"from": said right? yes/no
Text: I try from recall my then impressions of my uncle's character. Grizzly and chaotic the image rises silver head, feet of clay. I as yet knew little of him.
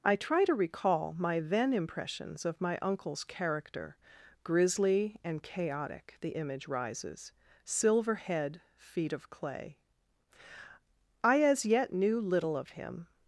no